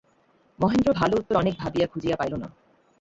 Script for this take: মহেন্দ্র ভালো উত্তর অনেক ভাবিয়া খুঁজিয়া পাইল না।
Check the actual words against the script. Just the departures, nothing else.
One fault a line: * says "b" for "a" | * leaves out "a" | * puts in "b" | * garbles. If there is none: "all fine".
all fine